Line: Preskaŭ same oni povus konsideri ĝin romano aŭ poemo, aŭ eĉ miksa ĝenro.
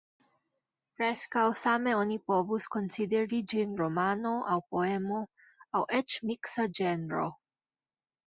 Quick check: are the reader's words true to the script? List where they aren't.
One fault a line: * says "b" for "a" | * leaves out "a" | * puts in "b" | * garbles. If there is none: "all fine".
all fine